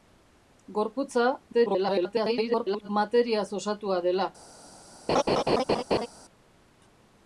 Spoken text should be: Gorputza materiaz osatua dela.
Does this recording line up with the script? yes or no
no